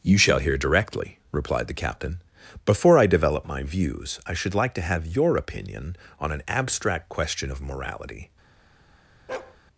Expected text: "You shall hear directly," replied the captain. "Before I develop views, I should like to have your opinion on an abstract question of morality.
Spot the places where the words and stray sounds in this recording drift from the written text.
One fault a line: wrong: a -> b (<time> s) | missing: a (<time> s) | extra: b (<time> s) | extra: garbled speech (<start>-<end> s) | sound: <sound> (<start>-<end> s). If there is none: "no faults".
extra: my (3.5 s)
sound: bark (9.3-9.6 s)